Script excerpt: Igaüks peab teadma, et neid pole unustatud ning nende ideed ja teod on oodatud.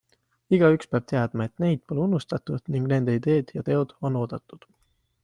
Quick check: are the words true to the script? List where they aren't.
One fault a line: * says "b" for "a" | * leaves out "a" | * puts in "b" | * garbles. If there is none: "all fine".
all fine